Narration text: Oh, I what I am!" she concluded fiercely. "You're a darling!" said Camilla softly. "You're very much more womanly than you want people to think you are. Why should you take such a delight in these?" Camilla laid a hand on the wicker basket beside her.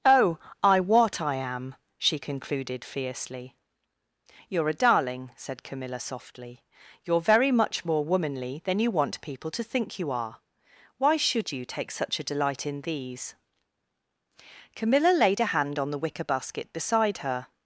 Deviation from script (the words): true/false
false